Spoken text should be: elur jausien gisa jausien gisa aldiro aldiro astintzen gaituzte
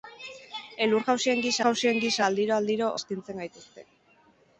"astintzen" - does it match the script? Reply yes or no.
yes